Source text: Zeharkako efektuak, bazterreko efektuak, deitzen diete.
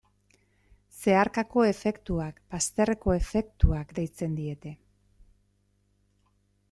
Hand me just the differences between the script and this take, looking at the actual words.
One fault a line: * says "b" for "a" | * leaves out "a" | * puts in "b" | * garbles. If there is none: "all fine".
all fine